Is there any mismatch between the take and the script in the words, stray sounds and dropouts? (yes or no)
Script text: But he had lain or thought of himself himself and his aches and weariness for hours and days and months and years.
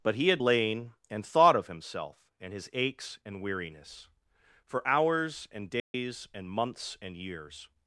yes